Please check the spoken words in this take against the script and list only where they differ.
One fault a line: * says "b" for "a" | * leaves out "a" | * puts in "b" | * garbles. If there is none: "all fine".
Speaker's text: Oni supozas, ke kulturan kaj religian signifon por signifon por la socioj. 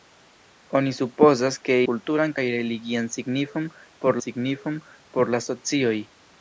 all fine